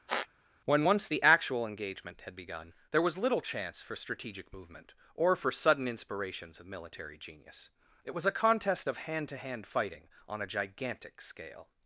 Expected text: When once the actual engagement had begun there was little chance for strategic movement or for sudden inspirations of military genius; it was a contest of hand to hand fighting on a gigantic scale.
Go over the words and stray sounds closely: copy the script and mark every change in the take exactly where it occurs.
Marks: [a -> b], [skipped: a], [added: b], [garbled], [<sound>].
[squeak] When once the actual engagement had begun there was little chance for strategic movement or for sudden inspirations of military genius; it was a contest of hand to hand fighting on a gigantic scale.